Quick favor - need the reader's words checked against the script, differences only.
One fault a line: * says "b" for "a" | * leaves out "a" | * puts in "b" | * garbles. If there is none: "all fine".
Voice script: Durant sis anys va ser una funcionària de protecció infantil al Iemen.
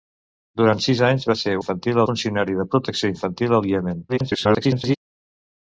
* says "infantil" for "una"
* garbles